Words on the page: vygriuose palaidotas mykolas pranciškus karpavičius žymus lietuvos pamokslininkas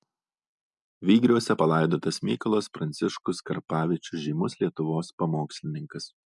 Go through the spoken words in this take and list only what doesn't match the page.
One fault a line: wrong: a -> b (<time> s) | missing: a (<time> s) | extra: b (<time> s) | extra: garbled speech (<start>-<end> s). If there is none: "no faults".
no faults